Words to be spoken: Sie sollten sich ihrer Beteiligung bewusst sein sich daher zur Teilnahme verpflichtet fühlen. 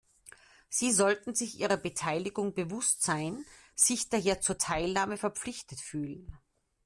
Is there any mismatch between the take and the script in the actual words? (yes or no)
no